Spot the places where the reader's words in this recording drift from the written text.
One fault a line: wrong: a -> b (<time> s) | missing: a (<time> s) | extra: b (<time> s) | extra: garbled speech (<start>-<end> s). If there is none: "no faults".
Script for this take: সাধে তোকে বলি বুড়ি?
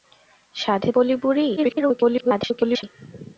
missing: তোকে (0.9 s)
extra: garbled speech (1.6-2.8 s)